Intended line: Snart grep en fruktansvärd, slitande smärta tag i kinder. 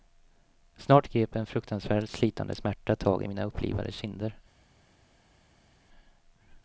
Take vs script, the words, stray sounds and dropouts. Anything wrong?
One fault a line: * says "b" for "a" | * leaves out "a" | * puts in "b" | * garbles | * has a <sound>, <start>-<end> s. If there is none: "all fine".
* puts in "mina upplivade"